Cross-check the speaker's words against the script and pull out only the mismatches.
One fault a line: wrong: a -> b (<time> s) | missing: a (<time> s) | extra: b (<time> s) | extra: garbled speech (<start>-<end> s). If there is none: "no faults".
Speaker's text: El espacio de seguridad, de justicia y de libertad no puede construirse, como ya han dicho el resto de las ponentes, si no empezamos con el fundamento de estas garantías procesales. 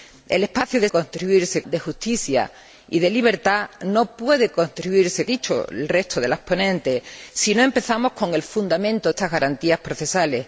wrong: seguridad -> construirse (0.9 s)
missing: como ya han (5.3 s)
missing: de (9.1 s)